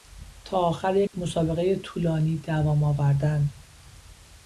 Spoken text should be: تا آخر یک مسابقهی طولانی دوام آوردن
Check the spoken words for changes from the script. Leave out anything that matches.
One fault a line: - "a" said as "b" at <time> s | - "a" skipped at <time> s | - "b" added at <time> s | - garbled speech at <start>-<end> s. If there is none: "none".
none